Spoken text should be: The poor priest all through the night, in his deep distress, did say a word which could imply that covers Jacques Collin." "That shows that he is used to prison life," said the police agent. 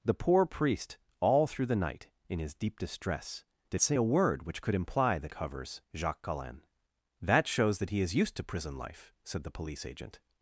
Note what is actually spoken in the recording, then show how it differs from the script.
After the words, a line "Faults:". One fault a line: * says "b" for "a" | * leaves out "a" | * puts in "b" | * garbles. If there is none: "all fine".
The poor priest all through the night, in his deep distress, did say a word which could imply that covers Jacques Collin." "That shows that he is used to prison life," said the police agent.
Faults:
all fine